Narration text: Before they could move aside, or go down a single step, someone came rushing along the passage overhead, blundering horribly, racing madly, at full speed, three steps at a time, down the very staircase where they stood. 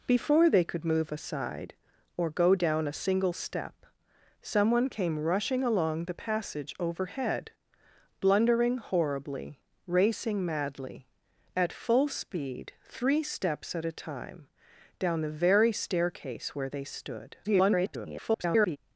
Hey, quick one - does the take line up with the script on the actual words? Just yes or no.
no